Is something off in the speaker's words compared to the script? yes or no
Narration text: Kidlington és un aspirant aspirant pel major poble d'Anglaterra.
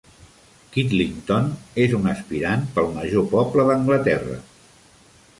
yes